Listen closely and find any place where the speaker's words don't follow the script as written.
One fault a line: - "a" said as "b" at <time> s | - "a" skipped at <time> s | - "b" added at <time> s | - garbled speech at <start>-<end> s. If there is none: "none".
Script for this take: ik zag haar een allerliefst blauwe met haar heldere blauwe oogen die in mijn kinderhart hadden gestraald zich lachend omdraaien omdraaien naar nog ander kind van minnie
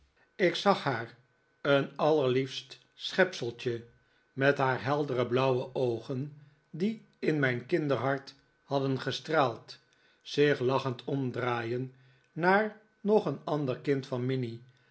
- "blauwe" said as "schepseltje" at 2.9 s
- "omdraaien" skipped at 11.9 s
- "een" added at 13.3 s